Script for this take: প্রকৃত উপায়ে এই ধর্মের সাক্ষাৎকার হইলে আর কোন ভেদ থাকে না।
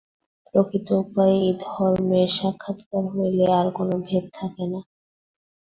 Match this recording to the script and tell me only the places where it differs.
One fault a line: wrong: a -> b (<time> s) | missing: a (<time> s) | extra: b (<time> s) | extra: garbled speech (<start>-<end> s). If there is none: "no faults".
no faults